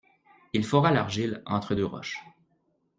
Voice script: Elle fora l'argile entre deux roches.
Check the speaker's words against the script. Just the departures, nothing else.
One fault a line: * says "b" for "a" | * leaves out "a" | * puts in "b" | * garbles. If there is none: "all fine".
* says "Il" for "Elle"